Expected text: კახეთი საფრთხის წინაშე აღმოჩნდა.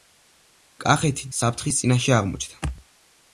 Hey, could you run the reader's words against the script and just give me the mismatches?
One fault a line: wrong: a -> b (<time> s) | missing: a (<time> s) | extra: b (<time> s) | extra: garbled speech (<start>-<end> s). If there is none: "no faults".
no faults